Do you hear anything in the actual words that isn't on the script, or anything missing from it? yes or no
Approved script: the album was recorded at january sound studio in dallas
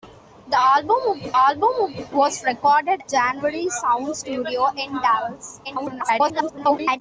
yes